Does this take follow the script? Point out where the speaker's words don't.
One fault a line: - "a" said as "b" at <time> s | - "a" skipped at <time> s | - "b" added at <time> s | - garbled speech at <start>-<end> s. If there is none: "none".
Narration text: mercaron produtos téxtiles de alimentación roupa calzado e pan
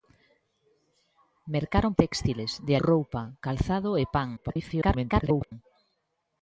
- "produtos" skipped at 1.9 s
- "alimentación" skipped at 2.7 s
- garbled speech at 4.4-5.5 s